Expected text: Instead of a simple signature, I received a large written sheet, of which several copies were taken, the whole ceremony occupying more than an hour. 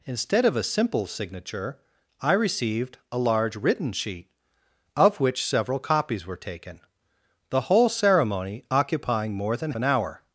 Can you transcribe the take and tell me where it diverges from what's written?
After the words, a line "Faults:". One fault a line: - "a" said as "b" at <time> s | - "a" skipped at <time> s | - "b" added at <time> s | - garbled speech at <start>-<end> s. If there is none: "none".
Instead of a simple signature, I received a large written sheet, of which several copies were taken, the whole ceremony occupying more than an hour.
Faults:
none